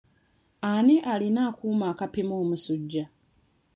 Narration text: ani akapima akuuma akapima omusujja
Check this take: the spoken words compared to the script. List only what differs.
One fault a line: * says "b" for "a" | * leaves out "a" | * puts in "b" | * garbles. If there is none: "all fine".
* says "alina" for "akapima"